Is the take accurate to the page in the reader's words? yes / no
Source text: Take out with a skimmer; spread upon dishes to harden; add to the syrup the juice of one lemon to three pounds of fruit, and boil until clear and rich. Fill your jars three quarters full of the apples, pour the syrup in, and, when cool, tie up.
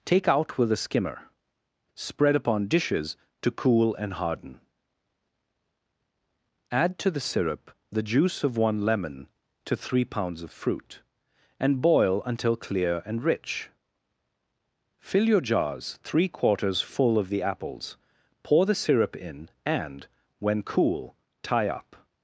no